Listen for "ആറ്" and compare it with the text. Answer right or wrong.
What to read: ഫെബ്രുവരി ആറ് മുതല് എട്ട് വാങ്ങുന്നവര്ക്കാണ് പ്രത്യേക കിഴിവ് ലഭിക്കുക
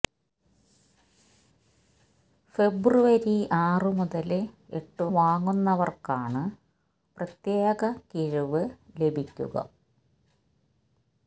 right